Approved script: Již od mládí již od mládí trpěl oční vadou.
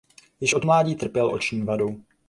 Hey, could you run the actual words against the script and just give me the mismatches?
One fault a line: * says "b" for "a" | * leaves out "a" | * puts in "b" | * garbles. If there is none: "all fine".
* leaves out "již od mládí"